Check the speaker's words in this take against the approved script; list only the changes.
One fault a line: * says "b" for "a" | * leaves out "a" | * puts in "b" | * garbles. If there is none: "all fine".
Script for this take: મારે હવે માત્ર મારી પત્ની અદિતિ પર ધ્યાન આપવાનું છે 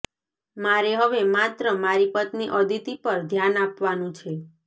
all fine